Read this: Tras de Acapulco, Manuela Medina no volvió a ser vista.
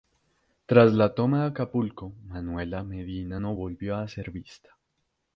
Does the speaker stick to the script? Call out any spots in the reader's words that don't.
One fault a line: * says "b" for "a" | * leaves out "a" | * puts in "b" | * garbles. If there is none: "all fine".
* puts in "la toma"